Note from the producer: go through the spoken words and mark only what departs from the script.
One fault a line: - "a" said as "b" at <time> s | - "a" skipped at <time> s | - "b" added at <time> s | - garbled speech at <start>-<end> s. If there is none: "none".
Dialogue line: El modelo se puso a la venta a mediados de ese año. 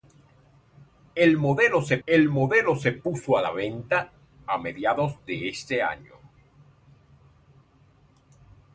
- "el modelo se" added at 2.0 s